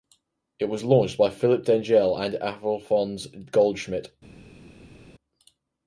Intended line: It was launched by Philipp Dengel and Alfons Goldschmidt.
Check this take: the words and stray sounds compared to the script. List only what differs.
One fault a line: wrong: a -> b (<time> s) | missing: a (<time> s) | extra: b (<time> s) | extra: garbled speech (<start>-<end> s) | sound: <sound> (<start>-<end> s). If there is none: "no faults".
no faults